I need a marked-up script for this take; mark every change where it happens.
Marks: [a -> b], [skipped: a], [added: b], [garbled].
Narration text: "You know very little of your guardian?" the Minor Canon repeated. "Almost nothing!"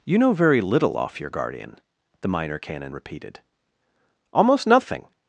"You know very little [of -> off] your guardian?" the Minor Canon repeated. "Almost nothing!"